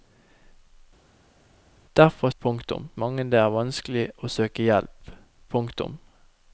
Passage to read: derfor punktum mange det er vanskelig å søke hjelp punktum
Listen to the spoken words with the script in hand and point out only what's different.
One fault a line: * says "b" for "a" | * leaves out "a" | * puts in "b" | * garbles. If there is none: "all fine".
all fine